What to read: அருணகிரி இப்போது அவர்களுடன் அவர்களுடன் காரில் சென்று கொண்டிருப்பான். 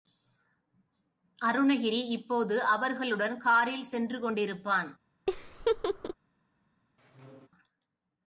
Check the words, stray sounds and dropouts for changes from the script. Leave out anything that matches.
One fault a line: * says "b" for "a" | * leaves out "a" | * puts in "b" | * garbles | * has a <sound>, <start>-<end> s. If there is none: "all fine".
* leaves out "அவர்களுடன்"
* has a laugh, 5.3-6.1 s
* has a squeak, 7.0-7.5 s